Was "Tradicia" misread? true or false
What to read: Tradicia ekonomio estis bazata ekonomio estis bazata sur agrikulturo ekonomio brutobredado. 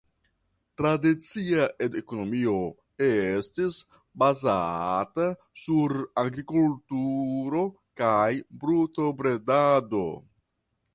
false